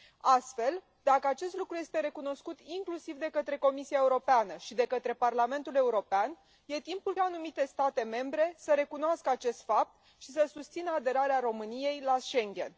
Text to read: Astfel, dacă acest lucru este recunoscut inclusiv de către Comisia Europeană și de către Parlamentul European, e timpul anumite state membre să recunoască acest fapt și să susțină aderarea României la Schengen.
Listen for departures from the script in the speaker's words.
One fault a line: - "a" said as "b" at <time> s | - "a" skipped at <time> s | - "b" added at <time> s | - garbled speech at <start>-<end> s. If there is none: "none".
none